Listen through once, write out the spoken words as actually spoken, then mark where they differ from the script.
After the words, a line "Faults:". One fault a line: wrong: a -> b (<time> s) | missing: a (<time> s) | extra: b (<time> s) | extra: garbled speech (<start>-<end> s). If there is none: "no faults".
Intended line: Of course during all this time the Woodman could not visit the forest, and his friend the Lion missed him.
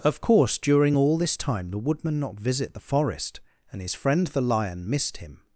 Of course during all this time the Woodman not visit the forest, and his friend the Lion missed him.
Faults:
missing: could (2.2 s)